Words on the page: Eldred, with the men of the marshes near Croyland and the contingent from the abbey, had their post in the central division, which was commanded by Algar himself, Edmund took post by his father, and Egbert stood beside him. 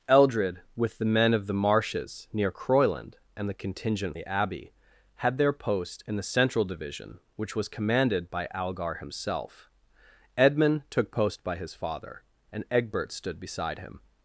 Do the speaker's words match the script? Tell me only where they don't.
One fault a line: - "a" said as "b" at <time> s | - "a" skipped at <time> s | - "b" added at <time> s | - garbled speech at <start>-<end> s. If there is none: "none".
- "from" skipped at 4.2 s